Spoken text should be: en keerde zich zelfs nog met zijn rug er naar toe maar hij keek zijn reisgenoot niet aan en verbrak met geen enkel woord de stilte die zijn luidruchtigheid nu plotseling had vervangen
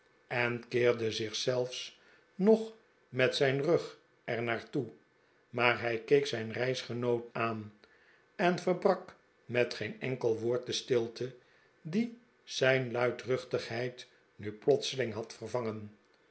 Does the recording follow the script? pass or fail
fail